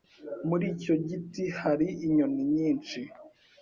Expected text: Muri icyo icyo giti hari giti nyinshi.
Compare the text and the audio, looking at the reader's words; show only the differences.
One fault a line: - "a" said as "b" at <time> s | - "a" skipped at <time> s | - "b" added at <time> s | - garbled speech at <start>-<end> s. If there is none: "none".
- "icyo" skipped at 0.9 s
- "giti" said as "inyoni" at 2.1 s